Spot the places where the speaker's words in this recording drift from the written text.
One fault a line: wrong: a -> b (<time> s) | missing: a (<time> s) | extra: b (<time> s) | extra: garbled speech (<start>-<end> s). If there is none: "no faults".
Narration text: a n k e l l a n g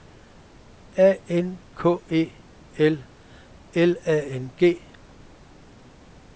no faults